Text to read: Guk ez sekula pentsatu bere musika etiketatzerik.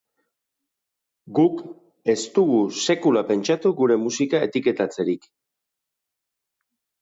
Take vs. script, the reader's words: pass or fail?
fail